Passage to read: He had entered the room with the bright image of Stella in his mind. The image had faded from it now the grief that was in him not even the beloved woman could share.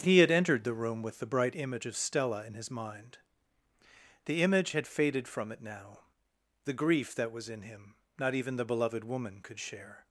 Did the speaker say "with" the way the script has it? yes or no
yes